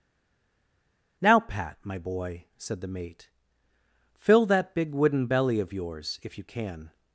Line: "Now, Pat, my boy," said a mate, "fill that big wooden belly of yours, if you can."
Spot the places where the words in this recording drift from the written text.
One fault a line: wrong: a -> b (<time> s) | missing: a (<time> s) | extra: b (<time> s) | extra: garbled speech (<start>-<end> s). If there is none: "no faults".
wrong: a -> the (2.8 s)